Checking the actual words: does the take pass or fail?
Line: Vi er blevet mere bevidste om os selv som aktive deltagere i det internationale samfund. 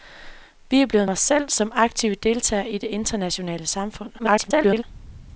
fail